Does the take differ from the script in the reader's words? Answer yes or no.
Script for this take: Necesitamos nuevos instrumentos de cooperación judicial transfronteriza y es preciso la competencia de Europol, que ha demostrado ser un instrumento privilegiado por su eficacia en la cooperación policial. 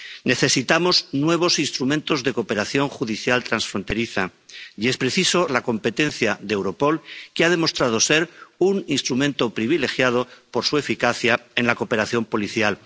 no